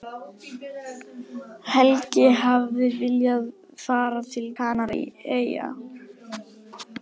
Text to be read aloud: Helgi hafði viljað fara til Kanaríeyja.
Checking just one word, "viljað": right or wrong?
right